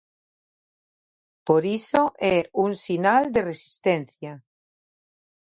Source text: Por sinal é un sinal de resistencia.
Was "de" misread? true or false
false